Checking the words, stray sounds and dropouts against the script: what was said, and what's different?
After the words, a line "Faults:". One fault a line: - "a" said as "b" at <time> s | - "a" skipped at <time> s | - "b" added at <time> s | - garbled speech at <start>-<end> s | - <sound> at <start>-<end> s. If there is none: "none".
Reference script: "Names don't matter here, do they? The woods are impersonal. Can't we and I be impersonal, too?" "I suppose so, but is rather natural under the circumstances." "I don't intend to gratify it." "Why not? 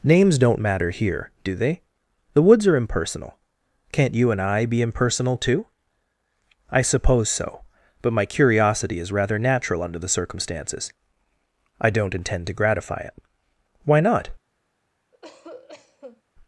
"Names don't matter here, do they? The woods are impersonal. Can't you and I be impersonal, too?" "I suppose so, but my curiosity is rather natural under the circumstances." "I don't intend to gratify it." "Why not?
Faults:
- "we" said as "you" at 4.1 s
- "my curiosity" added at 8.1 s
- cough at 15.1-16.2 s